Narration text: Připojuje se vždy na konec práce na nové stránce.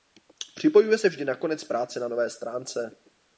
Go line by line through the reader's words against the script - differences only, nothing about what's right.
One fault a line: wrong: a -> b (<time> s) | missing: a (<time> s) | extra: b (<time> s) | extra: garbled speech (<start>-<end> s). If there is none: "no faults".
no faults